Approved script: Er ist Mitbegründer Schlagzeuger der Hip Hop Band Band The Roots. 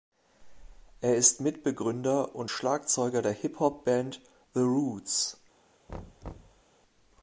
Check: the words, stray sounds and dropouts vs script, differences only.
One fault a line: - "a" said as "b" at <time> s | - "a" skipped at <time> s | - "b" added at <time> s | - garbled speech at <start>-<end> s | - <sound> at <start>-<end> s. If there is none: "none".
- "und" added at 2.3 s
- "Band" skipped at 4.2 s
- thud at 5.9-6.6 s